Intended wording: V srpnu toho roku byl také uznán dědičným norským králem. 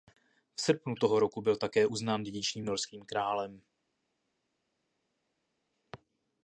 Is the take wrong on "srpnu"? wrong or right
right